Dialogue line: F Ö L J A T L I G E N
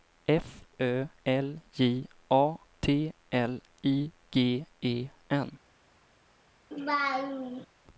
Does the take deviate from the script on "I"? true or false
false